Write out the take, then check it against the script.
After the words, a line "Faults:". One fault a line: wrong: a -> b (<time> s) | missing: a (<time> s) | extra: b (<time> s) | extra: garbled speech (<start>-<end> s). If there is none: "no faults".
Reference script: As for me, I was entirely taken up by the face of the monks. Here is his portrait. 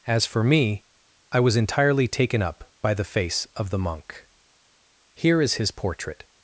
As for me, I was entirely taken up by the face of the monk. Here is his portrait.
Faults:
wrong: monks -> monk (3.8 s)